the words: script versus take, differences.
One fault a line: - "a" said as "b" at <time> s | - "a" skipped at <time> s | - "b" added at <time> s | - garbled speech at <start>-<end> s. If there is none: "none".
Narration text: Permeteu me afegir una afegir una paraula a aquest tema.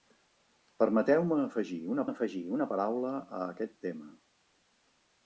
none